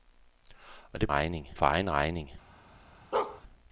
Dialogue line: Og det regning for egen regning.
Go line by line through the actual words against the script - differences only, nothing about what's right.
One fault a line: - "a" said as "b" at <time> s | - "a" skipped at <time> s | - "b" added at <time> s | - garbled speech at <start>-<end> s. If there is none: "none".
none